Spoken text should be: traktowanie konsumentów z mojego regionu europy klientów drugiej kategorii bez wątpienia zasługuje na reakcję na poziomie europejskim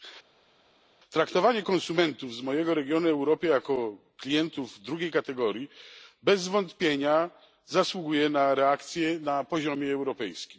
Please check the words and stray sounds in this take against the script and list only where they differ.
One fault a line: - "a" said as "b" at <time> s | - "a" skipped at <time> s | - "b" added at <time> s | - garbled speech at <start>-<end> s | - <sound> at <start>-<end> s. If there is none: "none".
- "jako" added at 3.5 s